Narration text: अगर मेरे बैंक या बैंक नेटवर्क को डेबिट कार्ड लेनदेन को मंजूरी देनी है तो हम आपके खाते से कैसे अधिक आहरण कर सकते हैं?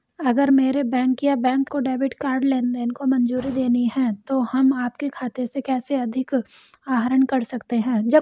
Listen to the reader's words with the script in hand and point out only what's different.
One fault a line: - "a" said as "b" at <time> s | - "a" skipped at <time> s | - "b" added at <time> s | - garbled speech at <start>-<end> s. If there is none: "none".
- "नेटवर्क" skipped at 1.7 s